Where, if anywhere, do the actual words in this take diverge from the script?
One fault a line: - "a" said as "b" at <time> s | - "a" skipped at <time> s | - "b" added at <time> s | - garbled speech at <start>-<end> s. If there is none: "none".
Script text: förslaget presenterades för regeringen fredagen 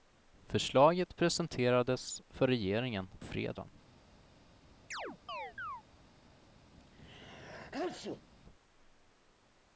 none